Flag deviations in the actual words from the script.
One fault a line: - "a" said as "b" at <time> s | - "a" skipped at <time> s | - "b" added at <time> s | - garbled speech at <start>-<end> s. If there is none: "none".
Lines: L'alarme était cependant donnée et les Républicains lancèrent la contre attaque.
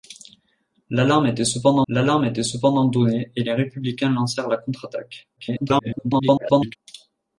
- "l'alarme était cependant" added at 1.9 s
- garbled speech at 5.4-6.8 s